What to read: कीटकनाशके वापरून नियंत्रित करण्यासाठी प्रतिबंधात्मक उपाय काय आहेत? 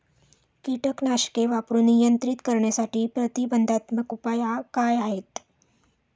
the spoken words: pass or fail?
pass